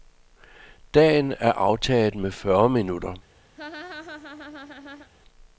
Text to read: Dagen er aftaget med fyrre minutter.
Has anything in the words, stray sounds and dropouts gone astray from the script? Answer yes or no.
yes